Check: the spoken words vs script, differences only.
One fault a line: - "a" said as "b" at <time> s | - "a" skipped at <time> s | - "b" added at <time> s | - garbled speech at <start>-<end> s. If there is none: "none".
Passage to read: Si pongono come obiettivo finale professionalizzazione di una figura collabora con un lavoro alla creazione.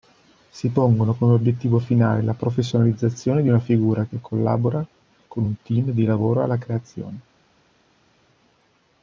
- "la" added at 2.2 s
- "che" added at 4.1 s
- "team di" added at 5.6 s